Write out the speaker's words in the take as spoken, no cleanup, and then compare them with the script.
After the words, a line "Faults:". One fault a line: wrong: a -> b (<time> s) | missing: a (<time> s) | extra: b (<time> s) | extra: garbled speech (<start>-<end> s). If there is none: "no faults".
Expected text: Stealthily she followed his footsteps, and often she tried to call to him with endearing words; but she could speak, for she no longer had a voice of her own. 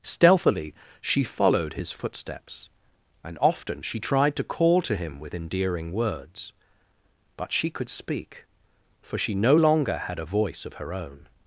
Stealthily she followed his footsteps, and often she tried to call to him with endearing words; but she could speak, for she no longer had a voice of her own.
Faults:
no faults